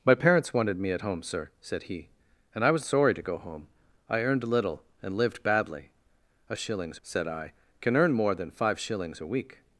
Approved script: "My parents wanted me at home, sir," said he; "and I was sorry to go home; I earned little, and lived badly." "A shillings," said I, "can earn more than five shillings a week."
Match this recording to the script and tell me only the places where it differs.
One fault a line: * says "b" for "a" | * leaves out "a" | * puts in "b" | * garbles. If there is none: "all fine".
all fine